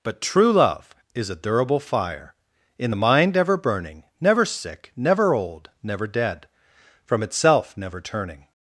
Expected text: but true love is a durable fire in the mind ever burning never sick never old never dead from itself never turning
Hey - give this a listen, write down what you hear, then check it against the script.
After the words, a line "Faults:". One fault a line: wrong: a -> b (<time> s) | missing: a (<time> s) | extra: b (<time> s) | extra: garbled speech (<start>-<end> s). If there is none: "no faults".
but true love is a durable fire in the mind ever burning never sick never old never dead from itself never turning
Faults:
no faults